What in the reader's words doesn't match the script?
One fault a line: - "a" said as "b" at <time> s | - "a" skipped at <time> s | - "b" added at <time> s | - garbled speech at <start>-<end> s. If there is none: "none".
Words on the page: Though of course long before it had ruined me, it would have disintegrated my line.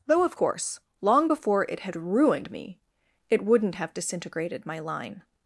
- "would" said as "wouldn't" at 3.4 s